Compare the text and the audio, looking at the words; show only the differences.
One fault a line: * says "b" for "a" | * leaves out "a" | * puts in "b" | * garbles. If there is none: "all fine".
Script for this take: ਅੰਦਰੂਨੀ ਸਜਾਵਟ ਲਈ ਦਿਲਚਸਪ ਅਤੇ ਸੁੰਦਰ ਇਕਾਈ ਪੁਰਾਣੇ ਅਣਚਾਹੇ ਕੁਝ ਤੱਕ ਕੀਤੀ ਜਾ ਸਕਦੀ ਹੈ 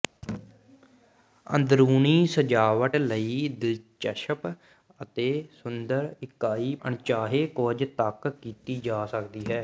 * leaves out "ਪੁਰਾਣੇ"